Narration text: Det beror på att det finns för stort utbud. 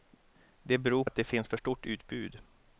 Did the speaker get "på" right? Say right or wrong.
wrong